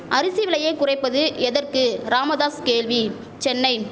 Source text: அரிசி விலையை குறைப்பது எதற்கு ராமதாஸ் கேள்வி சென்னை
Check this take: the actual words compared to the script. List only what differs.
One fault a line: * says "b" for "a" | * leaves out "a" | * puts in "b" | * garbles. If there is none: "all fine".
all fine